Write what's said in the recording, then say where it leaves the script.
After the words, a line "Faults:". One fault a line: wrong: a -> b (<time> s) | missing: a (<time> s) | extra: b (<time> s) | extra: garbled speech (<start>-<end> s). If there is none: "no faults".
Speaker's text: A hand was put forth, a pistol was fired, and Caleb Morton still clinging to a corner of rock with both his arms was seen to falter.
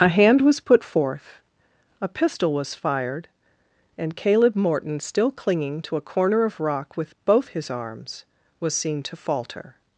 A hand was put forth, a pistol was fired, and Caleb Morton still clinging to a corner of rock with both his arms was seen to falter.
Faults:
no faults